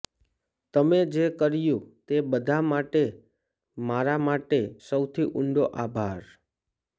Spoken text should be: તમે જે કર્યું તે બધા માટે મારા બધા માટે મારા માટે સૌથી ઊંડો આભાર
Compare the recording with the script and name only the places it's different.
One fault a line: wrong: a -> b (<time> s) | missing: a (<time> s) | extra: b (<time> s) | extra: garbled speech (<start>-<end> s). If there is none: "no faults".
missing: બધા માટે મારા (4.2 s)